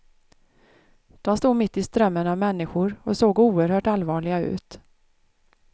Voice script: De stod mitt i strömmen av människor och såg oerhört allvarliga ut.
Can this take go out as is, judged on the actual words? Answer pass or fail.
pass